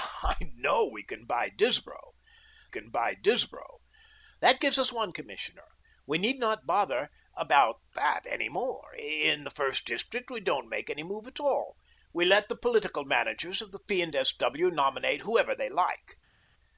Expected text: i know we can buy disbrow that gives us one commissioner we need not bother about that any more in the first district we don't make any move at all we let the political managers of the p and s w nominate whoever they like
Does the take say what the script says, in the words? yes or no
no